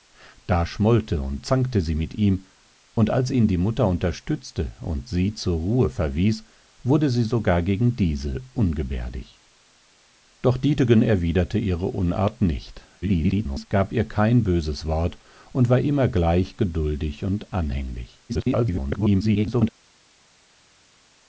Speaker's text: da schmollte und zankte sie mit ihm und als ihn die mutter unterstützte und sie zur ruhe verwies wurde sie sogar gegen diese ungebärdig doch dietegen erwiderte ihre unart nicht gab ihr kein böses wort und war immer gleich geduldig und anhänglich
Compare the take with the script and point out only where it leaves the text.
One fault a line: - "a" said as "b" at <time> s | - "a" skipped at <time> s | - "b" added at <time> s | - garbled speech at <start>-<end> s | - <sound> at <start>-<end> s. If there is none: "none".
- garbled speech at 13.0-13.7 s
- garbled speech at 18.3-19.7 s